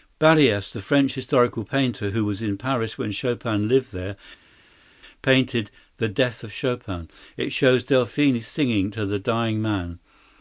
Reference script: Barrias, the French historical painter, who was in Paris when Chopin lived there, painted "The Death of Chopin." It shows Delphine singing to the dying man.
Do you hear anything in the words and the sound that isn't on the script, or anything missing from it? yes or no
no